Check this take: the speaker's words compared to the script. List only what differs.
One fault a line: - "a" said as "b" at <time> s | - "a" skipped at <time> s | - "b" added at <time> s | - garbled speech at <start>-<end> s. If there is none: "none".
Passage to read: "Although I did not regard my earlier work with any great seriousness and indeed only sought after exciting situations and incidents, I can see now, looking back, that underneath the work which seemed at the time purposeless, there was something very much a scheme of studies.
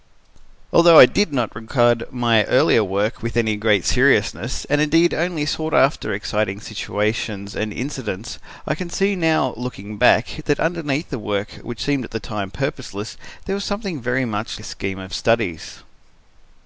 none